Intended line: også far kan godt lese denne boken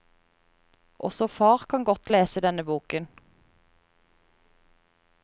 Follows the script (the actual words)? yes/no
yes